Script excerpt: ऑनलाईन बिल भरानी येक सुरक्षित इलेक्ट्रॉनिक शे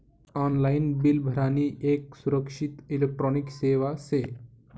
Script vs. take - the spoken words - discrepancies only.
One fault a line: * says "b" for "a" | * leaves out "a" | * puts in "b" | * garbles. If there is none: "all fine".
* puts in "सेवा"